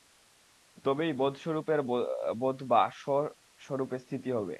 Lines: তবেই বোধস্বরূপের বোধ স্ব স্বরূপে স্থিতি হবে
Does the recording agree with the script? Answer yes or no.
no